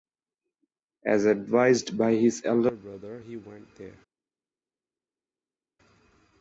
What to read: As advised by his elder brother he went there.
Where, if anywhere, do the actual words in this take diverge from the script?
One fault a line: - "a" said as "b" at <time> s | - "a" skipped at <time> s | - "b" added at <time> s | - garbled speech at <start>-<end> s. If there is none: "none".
none